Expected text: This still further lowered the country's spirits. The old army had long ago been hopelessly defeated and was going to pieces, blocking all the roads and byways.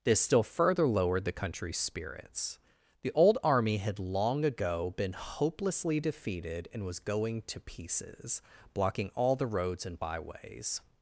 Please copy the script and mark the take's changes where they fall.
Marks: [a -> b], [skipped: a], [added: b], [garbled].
This still further lowered the country's spirits. The old army had long ago been hopelessly defeated and was going to pieces, blocking all the roads and byways.